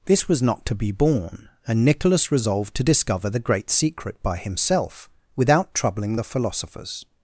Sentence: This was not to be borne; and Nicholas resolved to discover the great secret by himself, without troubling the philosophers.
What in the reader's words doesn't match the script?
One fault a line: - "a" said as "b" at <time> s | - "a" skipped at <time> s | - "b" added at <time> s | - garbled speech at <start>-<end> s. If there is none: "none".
none